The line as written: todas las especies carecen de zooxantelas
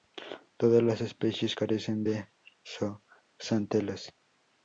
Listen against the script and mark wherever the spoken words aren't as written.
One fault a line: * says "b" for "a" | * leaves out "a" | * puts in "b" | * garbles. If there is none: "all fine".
all fine